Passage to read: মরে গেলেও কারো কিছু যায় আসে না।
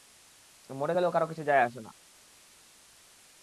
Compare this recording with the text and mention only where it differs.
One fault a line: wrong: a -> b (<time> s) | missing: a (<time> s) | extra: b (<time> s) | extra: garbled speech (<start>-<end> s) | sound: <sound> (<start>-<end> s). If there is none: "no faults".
no faults